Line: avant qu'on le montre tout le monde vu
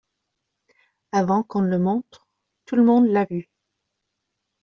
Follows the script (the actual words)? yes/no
no